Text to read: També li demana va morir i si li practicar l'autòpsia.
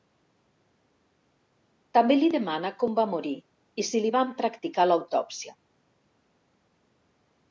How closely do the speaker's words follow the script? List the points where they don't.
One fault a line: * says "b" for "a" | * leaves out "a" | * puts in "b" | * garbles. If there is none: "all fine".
* puts in "com"
* puts in "van"